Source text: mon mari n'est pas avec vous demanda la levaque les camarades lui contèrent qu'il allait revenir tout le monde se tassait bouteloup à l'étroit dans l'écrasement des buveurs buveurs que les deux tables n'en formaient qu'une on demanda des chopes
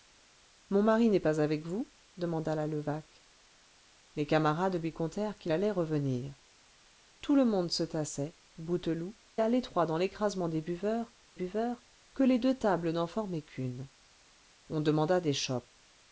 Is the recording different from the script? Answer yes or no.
no